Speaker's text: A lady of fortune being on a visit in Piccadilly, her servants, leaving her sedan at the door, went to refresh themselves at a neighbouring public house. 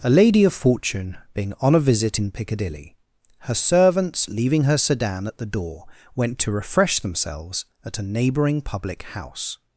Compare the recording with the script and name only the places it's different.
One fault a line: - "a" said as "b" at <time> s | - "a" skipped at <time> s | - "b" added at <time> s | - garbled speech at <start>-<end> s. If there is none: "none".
none